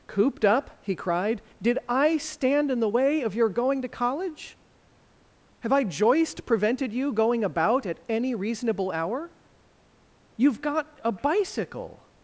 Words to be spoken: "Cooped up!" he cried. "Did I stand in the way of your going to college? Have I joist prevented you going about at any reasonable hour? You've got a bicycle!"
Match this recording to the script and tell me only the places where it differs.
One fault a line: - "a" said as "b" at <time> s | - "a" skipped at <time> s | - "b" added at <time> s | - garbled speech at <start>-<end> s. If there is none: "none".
none